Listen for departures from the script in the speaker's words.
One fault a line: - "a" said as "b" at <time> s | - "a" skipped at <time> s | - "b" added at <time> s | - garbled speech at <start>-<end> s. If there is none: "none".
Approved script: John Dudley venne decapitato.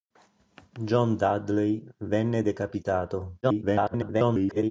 - garbled speech at 3.4-4.7 s